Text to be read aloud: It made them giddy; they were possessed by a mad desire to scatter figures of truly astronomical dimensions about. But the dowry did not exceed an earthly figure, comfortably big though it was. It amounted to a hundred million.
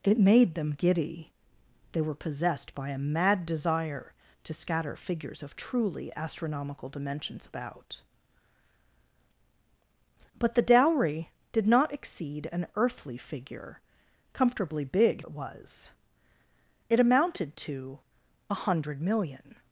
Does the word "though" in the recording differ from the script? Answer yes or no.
yes